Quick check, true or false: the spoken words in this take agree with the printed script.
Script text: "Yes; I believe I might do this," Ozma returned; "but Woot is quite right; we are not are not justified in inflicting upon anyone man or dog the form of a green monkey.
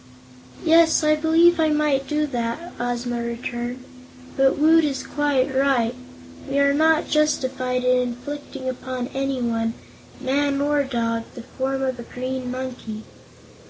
false